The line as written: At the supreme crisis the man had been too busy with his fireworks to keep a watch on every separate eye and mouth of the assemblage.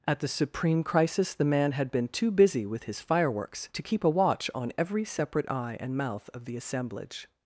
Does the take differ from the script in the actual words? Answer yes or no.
no